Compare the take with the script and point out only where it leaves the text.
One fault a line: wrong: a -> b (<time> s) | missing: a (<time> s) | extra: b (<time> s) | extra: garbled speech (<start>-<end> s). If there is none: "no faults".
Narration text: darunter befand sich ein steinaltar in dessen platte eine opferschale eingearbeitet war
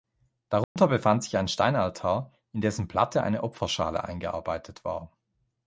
no faults